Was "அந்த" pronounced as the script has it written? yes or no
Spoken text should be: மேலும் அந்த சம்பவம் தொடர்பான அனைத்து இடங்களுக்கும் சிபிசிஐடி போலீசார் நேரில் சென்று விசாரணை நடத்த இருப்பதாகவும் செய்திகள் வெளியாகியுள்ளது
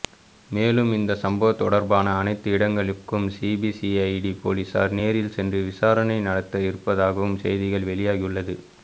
no